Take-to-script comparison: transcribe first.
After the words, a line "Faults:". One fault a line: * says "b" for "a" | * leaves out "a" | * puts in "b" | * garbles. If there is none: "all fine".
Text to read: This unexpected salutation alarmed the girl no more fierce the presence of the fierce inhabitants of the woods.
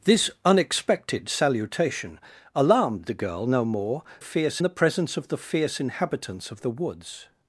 This unexpected salutation alarmed the girl no more fierce the presence of the fierce inhabitants of the woods.
Faults:
all fine